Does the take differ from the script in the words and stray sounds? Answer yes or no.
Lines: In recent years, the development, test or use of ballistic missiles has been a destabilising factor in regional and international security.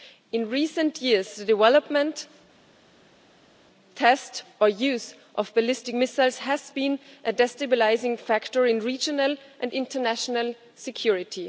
no